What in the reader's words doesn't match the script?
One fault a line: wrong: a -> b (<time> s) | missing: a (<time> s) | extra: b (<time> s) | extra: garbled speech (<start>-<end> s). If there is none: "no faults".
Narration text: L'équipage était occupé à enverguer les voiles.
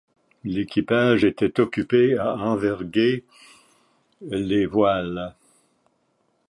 no faults